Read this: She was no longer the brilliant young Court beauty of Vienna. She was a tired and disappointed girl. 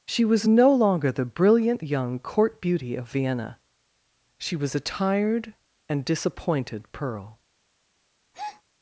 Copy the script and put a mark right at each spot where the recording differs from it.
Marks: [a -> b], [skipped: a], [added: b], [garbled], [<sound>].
She was no longer the brilliant young Court beauty of Vienna. She was a tired and disappointed [girl. -> pearl] [breath]